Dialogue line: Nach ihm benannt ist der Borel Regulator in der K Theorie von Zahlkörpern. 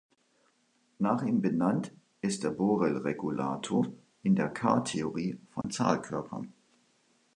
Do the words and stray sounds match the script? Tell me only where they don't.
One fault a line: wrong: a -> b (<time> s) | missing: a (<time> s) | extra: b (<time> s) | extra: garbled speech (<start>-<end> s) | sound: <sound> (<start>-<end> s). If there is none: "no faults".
sound: dropout (5.6-5.6 s)